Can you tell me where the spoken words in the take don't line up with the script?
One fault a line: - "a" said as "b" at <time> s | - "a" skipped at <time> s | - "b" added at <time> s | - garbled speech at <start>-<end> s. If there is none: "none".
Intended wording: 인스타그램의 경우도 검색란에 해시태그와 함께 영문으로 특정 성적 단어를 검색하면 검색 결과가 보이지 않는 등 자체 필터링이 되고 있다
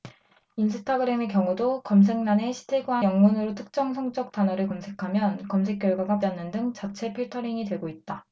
- "함께" skipped at 3.0 s
- "보이지" skipped at 6.2 s